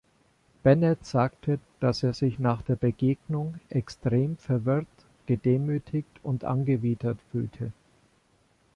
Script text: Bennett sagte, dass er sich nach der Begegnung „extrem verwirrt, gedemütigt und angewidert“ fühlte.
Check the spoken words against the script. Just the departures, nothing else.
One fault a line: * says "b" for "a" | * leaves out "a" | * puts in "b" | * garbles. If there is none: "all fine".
all fine